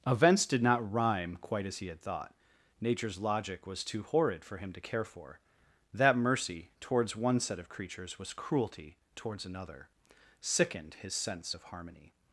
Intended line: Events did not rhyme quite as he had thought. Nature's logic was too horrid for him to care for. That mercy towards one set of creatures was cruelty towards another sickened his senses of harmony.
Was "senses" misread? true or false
true